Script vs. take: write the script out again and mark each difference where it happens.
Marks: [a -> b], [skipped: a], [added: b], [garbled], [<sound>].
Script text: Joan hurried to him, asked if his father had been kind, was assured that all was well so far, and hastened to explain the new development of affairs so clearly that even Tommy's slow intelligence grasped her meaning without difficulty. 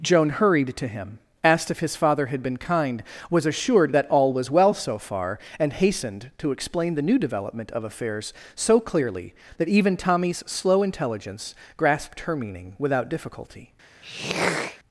Joan hurried to him, asked if his father had been kind, was assured that all was well so far, and hastened to explain the new development of affairs so clearly that even Tommy's slow intelligence grasped her meaning without difficulty. [throat clearing]